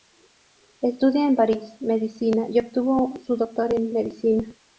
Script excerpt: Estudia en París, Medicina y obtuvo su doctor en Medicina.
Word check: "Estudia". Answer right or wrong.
right